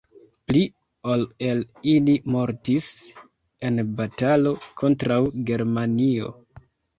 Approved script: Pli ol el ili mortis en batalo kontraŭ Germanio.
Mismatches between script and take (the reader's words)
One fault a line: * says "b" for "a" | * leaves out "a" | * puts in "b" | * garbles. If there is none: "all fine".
all fine